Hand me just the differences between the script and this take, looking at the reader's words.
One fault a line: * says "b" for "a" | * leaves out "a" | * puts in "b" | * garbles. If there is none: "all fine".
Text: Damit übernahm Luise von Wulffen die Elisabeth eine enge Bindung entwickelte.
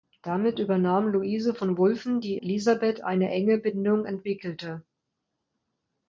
all fine